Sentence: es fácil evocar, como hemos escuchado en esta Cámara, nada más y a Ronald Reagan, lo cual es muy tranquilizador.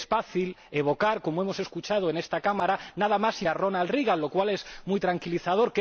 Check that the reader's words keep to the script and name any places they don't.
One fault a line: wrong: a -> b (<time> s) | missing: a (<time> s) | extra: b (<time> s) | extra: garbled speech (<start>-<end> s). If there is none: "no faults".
no faults